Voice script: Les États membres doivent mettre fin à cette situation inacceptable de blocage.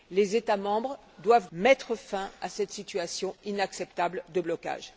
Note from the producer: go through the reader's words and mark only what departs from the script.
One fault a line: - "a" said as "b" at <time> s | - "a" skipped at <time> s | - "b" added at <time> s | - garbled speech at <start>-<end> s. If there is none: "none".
none